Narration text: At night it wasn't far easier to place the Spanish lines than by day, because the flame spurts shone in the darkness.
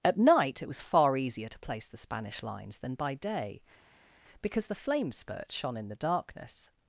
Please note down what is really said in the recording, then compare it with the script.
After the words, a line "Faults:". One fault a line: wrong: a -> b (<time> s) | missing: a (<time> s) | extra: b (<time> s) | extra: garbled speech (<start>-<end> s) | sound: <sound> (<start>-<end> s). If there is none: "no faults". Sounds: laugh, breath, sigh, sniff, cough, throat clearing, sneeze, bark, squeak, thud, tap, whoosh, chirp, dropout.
At night it was far easier to place the Spanish lines than by day, because the flame spurts shone in the darkness.
Faults:
wrong: wasn't -> was (0.7 s)